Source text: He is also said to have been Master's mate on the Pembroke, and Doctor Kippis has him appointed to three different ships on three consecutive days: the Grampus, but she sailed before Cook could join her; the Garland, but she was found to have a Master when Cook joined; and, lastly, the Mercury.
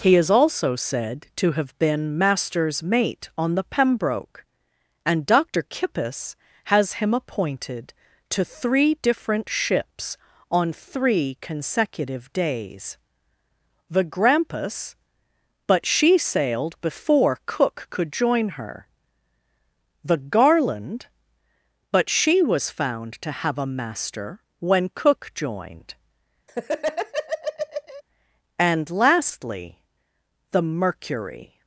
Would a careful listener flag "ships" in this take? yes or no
no